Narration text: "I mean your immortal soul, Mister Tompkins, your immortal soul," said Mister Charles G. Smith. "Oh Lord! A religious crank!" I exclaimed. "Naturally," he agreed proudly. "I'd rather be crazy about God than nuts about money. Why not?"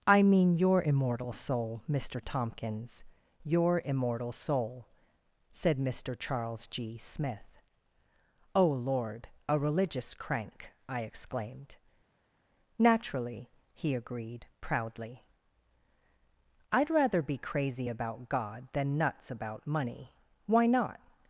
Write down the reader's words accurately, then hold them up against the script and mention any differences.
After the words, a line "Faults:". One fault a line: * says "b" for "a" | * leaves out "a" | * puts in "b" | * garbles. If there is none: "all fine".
"I mean your immortal soul, Mister Tompkins, your immortal soul," said Mister Charles G. Smith. "Oh Lord! A religious crank!" I exclaimed. "Naturally," he agreed proudly. "I'd rather be crazy about God than nuts about money. Why not?"
Faults:
all fine